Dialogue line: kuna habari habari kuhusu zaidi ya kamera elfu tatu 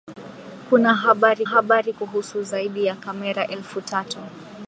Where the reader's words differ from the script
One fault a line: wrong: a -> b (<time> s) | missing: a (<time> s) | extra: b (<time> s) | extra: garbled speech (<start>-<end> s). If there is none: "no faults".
no faults